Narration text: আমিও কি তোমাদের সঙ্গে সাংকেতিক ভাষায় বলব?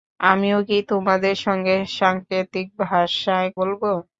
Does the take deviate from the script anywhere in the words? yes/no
no